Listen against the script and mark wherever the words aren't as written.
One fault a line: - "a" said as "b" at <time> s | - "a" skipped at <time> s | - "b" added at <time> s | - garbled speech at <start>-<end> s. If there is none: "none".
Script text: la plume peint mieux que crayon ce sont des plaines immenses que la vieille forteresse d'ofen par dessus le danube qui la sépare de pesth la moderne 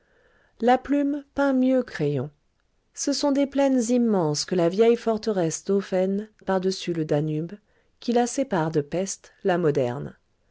none